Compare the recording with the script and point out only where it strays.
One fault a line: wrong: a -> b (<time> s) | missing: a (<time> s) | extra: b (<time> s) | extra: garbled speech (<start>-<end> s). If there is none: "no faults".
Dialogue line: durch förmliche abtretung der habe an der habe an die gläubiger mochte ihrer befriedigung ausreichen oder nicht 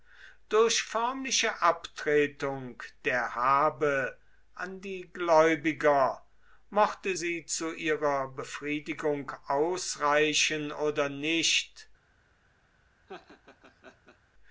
missing: der habe an (4.8 s)
extra: sie zu (7.1 s)